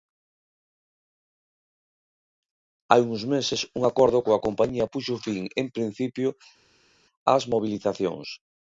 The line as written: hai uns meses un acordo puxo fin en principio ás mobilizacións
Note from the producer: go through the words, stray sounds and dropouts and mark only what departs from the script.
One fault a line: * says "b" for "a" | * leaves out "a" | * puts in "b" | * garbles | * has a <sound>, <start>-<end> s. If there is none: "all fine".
* puts in "coa compañía"